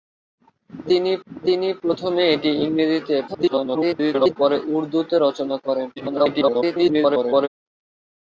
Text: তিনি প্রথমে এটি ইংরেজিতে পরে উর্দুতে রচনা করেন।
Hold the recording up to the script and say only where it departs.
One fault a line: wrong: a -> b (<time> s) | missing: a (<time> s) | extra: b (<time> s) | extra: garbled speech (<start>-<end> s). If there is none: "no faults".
extra: তিনি (1.3 s)
extra: garbled speech (3.3-4.4 s)
extra: garbled speech (6.0-7.5 s)